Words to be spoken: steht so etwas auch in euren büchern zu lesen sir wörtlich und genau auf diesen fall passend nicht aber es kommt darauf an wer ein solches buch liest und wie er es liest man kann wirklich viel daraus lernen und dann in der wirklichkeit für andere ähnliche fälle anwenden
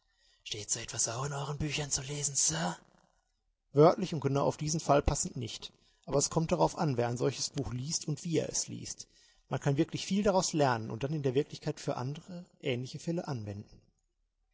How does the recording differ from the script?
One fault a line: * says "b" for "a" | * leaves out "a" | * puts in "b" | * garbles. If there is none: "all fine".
all fine